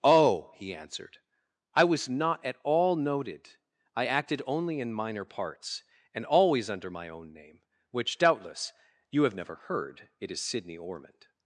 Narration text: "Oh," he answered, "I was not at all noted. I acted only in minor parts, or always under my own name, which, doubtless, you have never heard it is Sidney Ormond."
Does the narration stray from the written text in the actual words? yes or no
yes